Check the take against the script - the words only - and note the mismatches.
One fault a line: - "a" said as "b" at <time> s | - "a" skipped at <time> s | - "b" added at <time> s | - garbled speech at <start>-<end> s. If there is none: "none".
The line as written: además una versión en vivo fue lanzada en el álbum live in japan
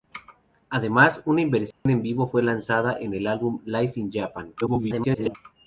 - garbled speech at 4.6-5.4 s